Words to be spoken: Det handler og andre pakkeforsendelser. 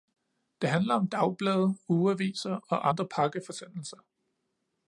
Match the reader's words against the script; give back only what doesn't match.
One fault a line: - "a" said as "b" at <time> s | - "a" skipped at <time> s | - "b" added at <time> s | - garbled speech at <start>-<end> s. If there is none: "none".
- "om dagblade ugeaviser" added at 0.9 s